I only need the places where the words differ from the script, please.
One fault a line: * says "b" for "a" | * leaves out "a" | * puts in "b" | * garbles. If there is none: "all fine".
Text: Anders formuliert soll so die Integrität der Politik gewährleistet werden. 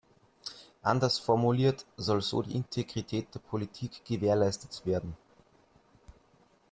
all fine